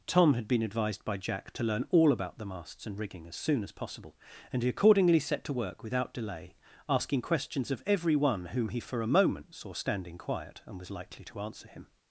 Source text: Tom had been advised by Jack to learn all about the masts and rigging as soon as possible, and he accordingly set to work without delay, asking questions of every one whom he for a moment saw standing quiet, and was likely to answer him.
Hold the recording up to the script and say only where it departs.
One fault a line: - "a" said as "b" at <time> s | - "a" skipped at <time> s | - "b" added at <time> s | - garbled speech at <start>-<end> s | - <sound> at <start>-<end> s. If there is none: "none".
none